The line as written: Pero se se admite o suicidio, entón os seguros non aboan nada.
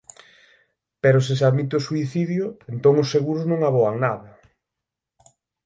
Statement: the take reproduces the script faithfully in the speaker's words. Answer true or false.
true